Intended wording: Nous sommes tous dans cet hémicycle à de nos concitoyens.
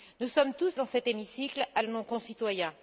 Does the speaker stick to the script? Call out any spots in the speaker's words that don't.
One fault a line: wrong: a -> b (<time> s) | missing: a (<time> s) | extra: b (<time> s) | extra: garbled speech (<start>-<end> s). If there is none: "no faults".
no faults